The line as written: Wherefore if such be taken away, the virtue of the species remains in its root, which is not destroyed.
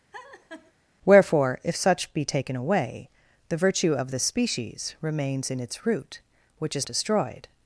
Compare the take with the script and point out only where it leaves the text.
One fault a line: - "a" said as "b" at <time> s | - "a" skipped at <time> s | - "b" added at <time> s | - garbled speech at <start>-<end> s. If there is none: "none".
- "not" skipped at 6.9 s